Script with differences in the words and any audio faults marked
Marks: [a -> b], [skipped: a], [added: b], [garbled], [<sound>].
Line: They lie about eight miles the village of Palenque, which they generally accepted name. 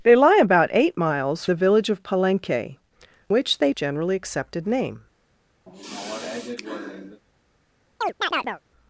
They lie about eight miles the village of Palenque, which they generally accepted name. [sigh] [chirp]